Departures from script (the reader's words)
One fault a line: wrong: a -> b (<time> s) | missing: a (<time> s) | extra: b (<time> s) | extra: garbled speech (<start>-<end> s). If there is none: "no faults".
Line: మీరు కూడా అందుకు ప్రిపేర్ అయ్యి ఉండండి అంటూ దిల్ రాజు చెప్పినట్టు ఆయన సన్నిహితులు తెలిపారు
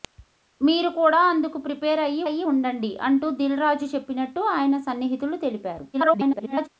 extra: అయ్యి (2.2 s)
extra: garbled speech (5.9-6.7 s)